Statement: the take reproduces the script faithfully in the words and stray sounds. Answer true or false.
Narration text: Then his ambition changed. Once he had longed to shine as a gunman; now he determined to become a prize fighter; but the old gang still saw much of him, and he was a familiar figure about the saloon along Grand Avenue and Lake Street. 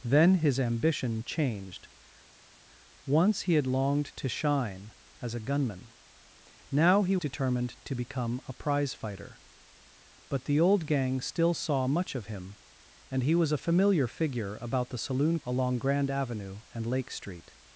true